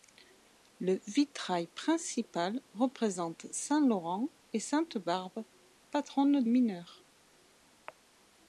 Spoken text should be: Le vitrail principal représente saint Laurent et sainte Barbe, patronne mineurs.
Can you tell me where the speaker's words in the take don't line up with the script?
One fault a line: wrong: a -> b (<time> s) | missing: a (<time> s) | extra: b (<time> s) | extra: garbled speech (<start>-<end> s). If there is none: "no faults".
no faults